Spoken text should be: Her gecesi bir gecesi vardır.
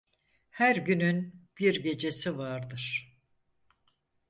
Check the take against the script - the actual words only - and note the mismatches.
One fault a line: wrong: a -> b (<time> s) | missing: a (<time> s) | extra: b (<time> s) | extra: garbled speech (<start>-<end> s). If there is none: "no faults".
wrong: gecesi -> günün (0.8 s)